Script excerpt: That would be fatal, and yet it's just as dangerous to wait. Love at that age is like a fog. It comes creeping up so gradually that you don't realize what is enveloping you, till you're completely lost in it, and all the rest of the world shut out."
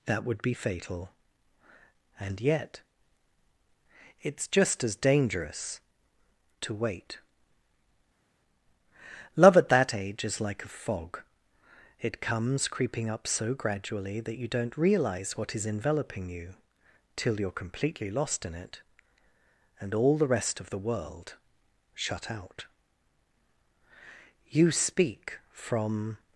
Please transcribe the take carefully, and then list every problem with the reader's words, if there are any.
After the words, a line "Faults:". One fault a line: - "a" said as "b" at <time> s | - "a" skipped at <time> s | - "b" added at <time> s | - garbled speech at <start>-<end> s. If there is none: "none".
That would be fatal, and yet it's just as dangerous to wait. Love at that age is like a fog. It comes creeping up so gradually that you don't realize what is enveloping you, till you're completely lost in it, and all the rest of the world shut out." "You speak from
Faults:
- "You speak from" added at 24.5 s